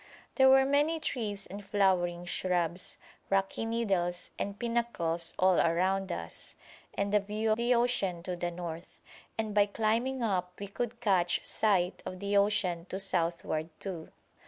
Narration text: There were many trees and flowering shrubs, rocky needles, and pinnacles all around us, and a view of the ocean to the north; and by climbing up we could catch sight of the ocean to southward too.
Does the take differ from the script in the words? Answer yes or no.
yes